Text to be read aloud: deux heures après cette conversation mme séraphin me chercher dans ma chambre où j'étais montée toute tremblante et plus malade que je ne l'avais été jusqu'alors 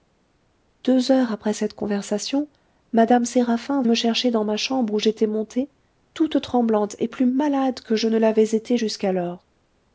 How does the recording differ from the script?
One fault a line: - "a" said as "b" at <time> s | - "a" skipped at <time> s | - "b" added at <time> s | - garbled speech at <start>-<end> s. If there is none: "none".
none